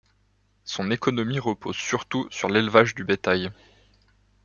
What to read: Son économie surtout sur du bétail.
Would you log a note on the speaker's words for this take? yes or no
yes